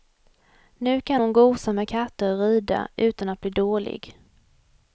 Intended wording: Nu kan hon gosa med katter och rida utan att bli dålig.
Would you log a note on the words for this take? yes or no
no